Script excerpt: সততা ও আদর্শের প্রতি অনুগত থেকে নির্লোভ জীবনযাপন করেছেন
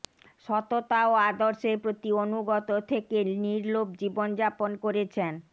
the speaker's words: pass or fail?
pass